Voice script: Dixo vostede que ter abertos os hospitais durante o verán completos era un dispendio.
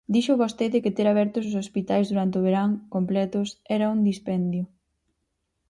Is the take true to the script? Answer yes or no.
yes